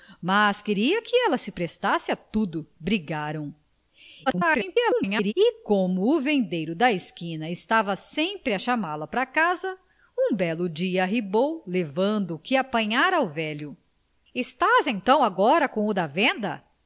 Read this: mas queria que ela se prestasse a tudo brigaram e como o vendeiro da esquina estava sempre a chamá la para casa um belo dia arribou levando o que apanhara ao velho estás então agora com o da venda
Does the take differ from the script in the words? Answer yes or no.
yes